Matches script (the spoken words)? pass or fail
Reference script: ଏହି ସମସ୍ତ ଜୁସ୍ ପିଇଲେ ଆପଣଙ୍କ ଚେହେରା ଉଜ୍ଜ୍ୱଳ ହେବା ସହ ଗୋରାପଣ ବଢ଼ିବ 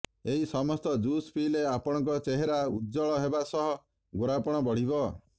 pass